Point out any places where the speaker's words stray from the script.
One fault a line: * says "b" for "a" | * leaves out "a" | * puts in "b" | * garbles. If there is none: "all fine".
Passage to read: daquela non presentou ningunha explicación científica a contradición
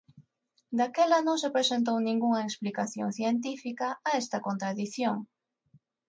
* puts in "se"
* puts in "esta"